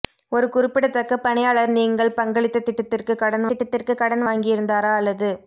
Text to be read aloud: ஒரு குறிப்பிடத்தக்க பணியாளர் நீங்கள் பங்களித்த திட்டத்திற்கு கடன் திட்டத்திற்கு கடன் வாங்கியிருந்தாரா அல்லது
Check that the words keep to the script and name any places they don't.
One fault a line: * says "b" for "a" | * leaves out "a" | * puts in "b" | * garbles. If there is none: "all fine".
all fine